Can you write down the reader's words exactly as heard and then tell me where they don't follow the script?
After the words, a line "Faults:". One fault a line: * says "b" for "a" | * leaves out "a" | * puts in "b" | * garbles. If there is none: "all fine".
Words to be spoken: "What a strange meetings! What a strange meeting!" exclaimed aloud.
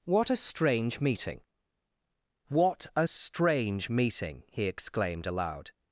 "What a strange meeting! What a strange meeting!" he exclaimed aloud.
Faults:
* says "meeting" for "meetings"
* puts in "he"